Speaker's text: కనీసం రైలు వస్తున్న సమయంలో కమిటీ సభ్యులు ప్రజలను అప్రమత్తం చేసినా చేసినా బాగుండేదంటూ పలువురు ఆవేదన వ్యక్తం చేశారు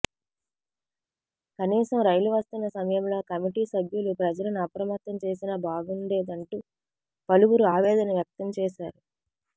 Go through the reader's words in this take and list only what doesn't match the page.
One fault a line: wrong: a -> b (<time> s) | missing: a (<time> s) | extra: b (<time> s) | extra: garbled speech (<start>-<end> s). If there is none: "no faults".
missing: చేసినా (5.5 s)